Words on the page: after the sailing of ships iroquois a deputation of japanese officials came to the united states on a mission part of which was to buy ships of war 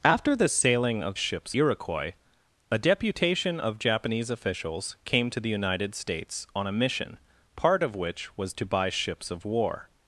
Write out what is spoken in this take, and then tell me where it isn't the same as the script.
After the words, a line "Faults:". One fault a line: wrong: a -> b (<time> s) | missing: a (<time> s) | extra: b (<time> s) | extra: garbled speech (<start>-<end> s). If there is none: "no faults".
after the sailing of ships iroquois a deputation of japanese officials came to the united states on a mission part of which was to buy ships of war
Faults:
no faults